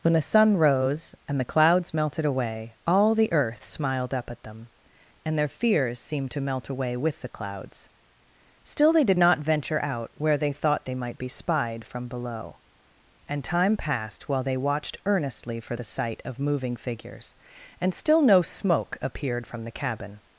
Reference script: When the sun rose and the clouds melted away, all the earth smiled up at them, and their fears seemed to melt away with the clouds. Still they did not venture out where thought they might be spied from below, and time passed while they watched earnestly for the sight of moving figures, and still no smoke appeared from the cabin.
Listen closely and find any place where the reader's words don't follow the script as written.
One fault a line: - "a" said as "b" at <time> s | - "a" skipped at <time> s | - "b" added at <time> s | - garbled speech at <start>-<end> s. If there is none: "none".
- "they" added at 10.4 s